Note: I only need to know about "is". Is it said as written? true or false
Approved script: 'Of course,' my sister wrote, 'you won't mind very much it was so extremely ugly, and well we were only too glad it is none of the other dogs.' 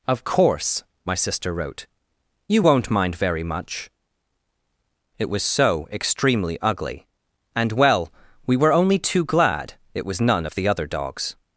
false